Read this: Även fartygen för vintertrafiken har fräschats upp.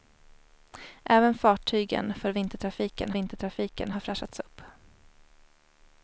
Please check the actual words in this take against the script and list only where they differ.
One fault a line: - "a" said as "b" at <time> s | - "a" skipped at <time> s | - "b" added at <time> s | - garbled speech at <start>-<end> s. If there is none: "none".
- "vintertrafiken" added at 3.1 s